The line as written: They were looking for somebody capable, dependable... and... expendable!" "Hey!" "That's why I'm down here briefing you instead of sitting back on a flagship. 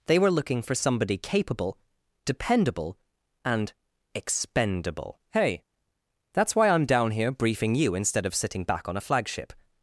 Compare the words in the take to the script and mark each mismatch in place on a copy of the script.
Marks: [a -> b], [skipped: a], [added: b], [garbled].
They were looking for somebody capable, dependable... and... expendable!" "Hey!" "That's why I'm down here briefing you instead of sitting back on a flagship.